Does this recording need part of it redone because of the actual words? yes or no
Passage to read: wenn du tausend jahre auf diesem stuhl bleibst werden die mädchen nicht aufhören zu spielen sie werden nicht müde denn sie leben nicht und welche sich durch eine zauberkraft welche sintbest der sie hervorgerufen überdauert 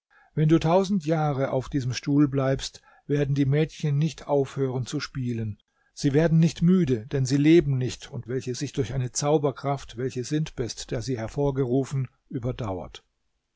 no